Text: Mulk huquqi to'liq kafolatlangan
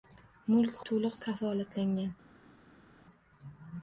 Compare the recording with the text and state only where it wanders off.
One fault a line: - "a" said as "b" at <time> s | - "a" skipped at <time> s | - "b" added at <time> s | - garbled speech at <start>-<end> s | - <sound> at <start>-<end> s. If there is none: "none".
- "huquqi" skipped at 0.8 s